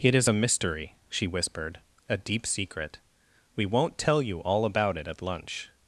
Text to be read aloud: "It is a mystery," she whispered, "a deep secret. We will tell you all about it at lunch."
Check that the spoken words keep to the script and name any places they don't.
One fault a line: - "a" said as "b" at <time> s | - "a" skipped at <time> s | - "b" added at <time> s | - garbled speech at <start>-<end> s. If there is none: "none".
- "will" said as "won't" at 3.6 s